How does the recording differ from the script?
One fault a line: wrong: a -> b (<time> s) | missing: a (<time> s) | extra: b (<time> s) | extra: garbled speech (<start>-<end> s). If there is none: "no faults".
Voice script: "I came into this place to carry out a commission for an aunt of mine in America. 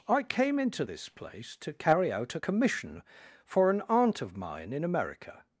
no faults